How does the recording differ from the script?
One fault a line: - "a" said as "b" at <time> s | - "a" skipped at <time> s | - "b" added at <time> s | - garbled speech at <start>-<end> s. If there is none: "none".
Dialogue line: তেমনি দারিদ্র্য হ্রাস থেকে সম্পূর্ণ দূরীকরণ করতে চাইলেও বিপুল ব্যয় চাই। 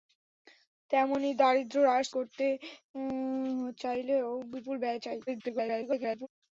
- "থেকে সম্পূর্ণ দূরীকরণ" skipped at 2.1 s
- garbled speech at 5.3-6.3 s